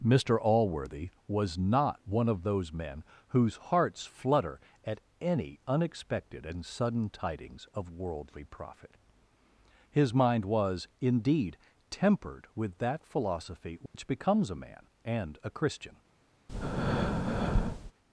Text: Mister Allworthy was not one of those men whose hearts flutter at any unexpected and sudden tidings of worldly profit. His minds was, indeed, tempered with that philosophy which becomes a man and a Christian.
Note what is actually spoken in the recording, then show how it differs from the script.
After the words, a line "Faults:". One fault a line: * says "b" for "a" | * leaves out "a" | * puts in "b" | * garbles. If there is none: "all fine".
Mister Allworthy was not one of those men whose hearts flutter at any unexpected and sudden tidings of worldly profit. His mind was, indeed, tempered with that philosophy which becomes a man and a Christian.
Faults:
* says "mind" for "minds"